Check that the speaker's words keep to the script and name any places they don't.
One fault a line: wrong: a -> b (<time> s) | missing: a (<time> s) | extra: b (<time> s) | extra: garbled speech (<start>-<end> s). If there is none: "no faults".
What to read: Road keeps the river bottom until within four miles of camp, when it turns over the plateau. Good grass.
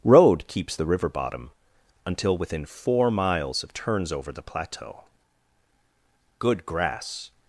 missing: camp when it (3.8 s)